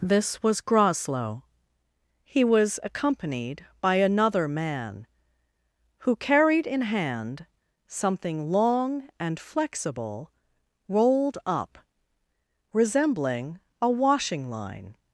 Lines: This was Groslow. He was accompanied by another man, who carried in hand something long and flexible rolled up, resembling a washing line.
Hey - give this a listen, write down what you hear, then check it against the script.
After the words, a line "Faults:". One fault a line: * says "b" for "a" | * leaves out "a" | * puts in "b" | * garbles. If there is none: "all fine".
This was Groslow. He was accompanied by another man, who carried in hand something long and flexible rolled up, resembling a washing line.
Faults:
all fine